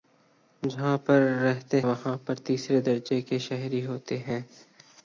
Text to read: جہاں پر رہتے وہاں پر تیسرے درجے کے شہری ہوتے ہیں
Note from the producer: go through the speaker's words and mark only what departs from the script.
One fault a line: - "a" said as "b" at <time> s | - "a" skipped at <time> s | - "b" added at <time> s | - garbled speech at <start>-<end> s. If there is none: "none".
none